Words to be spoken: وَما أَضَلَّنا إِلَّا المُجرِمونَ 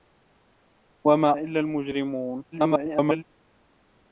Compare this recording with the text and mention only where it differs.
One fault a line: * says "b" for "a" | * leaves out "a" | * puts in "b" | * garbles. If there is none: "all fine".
* leaves out "أَضَلَّنا"
* garbles